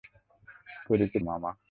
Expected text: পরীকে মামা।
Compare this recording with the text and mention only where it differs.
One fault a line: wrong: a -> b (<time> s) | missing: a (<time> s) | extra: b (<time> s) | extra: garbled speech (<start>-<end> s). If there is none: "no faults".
no faults